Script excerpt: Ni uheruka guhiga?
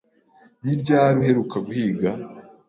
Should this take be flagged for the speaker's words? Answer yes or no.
yes